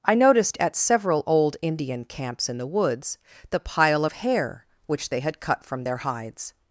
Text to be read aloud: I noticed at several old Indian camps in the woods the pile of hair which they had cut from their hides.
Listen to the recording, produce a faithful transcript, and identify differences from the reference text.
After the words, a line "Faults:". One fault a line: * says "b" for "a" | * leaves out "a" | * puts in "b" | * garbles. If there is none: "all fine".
I noticed at several old Indian camps in the woods the pile of hair which they had cut from their hides.
Faults:
all fine